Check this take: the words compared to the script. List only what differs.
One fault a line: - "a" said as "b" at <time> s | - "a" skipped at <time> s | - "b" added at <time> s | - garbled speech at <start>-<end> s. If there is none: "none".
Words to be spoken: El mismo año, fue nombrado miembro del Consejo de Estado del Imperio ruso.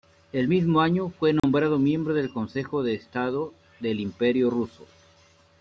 none